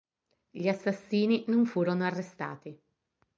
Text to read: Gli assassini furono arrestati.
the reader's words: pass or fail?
fail